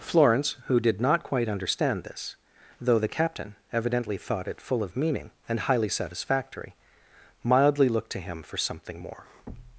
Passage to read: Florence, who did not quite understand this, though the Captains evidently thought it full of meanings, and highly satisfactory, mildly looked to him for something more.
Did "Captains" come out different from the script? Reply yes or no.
yes